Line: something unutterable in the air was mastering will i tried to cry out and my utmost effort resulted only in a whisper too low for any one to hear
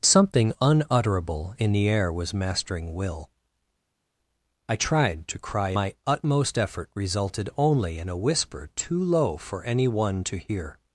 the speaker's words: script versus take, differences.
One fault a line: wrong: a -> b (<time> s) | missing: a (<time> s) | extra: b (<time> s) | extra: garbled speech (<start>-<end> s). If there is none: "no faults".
missing: out and (5.8 s)